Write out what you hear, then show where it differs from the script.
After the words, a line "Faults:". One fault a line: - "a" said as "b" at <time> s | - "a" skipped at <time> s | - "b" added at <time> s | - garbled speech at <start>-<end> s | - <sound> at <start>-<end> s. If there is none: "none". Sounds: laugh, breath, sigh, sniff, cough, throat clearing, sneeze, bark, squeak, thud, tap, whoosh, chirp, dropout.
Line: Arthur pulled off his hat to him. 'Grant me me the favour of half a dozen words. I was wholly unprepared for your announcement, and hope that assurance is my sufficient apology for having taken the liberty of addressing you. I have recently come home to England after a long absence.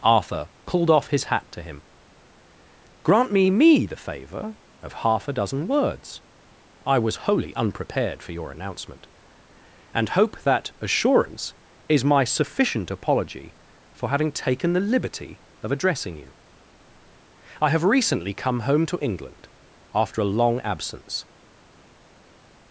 Arthur pulled off his hat to him. 'Grant me me the favour of half a dozen words. I was wholly unprepared for your announcement, and hope that assurance is my sufficient apology for having taken the liberty of addressing you. I have recently come home to England after a long absence.
Faults:
none